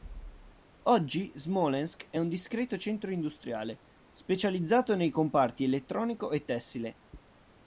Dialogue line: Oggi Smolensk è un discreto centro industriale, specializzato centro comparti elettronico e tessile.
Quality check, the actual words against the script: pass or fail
fail